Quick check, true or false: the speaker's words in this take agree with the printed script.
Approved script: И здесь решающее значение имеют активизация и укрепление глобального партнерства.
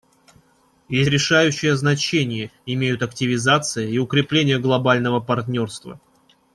false